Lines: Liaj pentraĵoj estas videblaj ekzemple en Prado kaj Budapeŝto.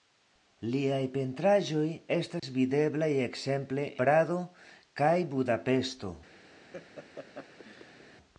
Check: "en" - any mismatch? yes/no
yes